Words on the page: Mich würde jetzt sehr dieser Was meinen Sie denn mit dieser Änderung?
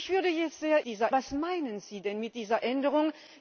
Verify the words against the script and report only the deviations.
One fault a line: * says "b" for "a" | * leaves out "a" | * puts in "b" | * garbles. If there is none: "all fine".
all fine